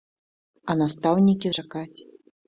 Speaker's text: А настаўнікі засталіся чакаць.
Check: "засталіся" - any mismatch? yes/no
yes